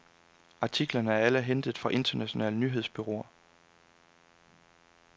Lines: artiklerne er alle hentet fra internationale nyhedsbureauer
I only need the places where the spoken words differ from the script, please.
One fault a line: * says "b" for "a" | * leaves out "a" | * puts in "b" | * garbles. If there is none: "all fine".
all fine